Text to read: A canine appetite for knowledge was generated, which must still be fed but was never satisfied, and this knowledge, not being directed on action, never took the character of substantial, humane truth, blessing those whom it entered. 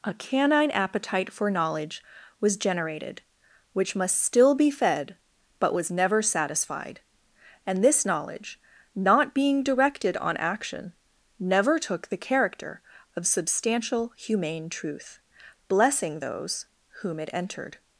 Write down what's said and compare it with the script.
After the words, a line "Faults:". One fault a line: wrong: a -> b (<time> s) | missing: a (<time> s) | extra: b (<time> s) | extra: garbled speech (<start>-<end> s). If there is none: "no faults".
A canine appetite for knowledge was generated, which must still be fed but was never satisfied, and this knowledge, not being directed on action, never took the character of substantial, humane truth, blessing those whom it entered.
Faults:
no faults